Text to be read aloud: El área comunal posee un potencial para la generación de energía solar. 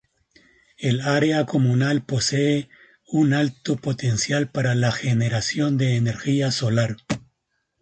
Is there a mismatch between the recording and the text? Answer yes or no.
yes